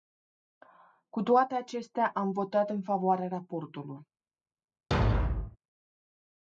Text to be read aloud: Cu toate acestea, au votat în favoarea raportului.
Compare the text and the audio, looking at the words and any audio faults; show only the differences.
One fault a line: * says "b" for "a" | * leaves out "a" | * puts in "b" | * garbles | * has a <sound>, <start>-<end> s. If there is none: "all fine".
* says "am" for "au"
* has a thud, 4.9-5.6 s